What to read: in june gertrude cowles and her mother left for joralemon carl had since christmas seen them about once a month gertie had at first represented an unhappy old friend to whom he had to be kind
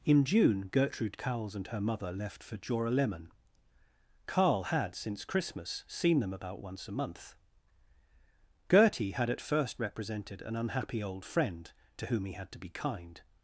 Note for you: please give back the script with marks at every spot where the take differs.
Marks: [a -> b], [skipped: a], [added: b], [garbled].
in june gertrude cowles and her mother left for joralemon carl had since christmas seen them about once a month gertie had at first represented an unhappy old friend to whom he had to be kind